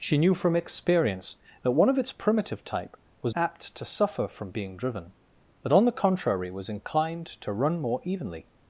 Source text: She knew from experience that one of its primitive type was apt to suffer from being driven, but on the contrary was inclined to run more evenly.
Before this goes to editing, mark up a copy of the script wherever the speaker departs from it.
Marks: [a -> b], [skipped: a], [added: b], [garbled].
She knew from experience that one of its primitive type was apt to suffer from being driven, but on the contrary was inclined to run more evenly.